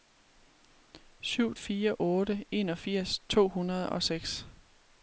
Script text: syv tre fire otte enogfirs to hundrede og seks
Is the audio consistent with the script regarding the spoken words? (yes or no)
no